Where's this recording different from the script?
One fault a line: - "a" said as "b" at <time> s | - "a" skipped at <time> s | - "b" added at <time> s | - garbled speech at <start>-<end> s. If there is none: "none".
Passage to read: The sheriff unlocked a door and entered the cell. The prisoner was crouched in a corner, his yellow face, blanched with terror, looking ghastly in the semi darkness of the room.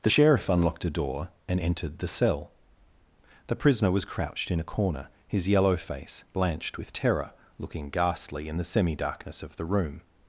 none